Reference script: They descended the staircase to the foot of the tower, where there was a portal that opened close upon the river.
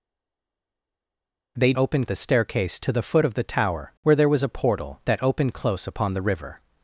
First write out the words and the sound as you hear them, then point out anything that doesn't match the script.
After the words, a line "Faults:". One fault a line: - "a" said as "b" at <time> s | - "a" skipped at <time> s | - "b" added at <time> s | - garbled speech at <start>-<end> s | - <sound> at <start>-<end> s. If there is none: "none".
They opened the staircase to the foot of the tower, where there was a portal that opened close upon the river.
Faults:
- "descended" said as "opened" at 1.8 s